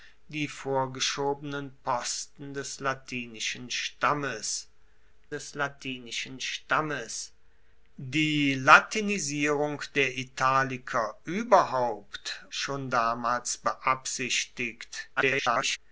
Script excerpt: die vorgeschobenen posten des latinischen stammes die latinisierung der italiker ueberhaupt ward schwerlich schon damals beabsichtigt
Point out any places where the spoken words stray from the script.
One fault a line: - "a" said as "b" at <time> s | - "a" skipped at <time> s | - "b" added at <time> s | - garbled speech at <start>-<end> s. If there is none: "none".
- "des latinischen stammes" added at 5.3 s
- "ward schwerlich" skipped at 12.5 s
- garbled speech at 15.2-15.8 s